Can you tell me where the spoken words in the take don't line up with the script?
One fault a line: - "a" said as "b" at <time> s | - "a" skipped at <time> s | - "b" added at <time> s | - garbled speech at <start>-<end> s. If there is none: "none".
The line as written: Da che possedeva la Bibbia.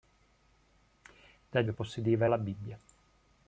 none